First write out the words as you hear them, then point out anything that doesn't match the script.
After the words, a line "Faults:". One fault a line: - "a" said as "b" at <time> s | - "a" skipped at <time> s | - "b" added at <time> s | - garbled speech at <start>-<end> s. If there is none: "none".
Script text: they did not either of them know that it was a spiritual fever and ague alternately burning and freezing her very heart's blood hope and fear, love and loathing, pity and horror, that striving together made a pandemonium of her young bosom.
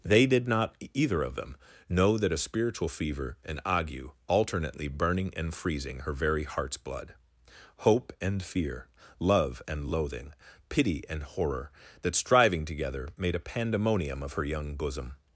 they did not either of them know that a spiritual fever and ague alternately burning and freezing her very heart's blood hope and fear, love and loathing, pity and horror, that striving together made a pandemonium of her young bosom.
Faults:
- "it was" skipped at 2.3 s